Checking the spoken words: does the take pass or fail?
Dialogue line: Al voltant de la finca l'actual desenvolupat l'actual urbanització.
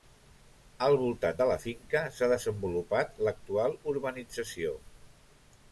fail